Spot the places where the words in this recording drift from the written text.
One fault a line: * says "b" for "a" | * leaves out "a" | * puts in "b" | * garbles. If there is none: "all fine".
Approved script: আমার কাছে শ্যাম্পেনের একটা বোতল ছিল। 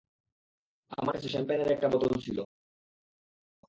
all fine